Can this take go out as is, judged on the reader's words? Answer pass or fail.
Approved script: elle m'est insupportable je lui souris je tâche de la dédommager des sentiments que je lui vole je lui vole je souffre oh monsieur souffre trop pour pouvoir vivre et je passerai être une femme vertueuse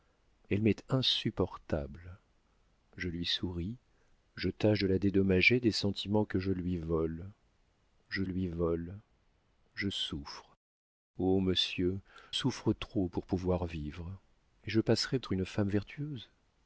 pass